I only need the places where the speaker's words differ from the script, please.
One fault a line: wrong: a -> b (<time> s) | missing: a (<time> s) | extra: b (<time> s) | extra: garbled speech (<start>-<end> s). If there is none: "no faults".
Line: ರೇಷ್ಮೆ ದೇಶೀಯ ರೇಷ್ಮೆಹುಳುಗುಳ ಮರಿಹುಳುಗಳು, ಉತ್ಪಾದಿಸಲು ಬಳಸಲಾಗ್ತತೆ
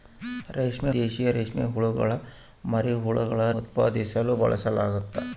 no faults